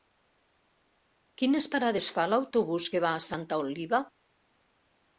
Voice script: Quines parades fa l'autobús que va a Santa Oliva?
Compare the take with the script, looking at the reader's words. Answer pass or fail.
pass